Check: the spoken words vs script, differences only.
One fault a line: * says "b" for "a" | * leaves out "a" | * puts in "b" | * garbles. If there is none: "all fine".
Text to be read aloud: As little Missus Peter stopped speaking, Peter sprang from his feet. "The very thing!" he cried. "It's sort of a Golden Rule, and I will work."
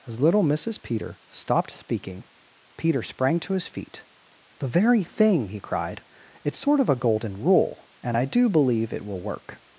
* says "to" for "from"
* puts in "do believe it"